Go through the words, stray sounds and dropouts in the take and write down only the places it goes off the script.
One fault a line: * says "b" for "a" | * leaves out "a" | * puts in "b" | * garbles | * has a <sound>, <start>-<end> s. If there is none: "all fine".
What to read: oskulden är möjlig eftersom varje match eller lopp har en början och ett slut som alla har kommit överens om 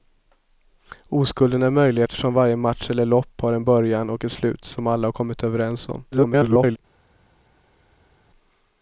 * garbles